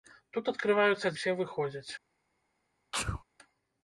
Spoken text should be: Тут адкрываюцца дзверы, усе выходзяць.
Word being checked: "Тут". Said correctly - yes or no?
yes